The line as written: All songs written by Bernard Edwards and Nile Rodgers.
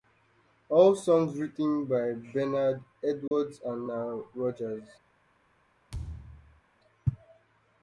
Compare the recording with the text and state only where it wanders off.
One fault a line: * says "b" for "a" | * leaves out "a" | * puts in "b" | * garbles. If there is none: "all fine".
all fine